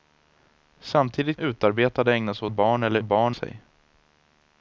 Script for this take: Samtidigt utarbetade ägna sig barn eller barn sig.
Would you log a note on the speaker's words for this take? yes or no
no